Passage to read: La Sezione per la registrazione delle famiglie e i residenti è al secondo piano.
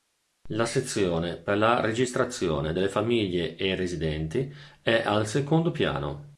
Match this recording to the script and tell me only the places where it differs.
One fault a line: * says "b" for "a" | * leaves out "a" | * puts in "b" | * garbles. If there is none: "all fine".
all fine